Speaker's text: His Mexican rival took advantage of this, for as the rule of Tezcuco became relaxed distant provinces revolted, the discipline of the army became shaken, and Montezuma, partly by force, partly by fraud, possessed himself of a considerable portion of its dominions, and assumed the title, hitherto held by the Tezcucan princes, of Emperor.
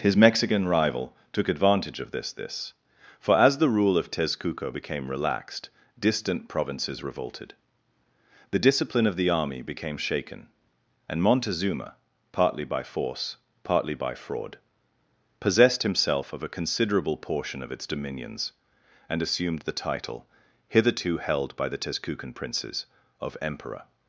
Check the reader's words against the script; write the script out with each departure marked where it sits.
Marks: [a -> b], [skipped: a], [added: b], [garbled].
His Mexican rival took advantage of this, [added: this] for as the rule of Tezcuco became relaxed distant provinces revolted, the discipline of the army became shaken, and Montezuma, partly by force, partly by fraud, possessed himself of a considerable portion of its dominions, and assumed the title, hitherto held by the Tezcucan princes, of Emperor.